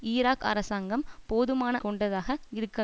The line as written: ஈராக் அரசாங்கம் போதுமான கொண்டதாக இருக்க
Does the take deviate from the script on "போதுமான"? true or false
false